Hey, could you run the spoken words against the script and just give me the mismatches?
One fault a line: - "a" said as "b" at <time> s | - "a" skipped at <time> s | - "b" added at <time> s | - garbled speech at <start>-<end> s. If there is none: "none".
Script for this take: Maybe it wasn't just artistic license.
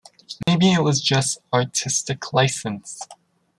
- "wasn't" said as "was" at 0.8 s